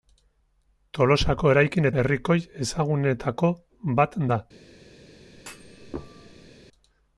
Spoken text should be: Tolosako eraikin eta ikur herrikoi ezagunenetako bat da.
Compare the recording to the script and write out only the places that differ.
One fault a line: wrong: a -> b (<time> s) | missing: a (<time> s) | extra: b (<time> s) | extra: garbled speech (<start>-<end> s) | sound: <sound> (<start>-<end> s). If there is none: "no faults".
missing: eta ikur (1.9 s)
sound: thud (5.3-6.5 s)